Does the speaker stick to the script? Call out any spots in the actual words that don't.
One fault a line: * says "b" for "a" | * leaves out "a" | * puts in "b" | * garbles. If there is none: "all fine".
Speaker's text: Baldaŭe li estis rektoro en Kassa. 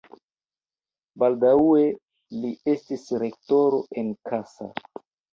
all fine